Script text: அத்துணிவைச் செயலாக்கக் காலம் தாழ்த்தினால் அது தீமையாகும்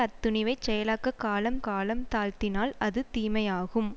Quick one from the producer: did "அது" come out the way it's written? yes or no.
yes